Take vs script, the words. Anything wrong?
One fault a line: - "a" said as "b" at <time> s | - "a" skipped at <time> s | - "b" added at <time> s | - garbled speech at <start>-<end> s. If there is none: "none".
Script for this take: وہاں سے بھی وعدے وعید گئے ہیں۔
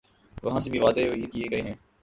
- "کیے" added at 1.3 s